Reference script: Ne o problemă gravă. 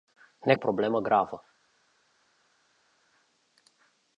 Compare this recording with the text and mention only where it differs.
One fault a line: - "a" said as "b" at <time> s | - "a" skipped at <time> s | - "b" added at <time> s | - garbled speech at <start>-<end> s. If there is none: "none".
none